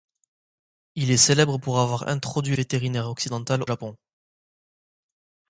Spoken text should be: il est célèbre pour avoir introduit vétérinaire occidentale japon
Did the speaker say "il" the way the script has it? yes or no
yes